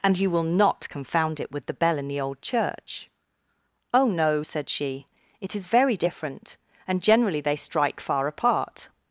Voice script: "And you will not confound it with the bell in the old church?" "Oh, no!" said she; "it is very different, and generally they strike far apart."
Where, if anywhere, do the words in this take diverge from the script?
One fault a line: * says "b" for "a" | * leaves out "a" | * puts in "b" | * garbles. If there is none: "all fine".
all fine